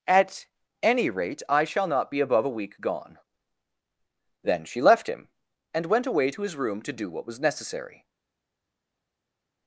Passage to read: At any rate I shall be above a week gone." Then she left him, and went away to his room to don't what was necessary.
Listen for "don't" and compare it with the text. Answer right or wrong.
wrong